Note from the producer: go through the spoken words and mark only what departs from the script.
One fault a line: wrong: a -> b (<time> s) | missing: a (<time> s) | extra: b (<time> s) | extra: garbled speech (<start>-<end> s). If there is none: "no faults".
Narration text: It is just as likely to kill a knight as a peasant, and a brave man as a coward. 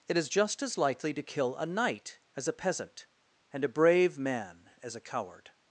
no faults